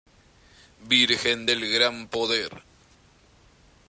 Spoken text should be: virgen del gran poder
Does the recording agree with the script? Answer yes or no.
yes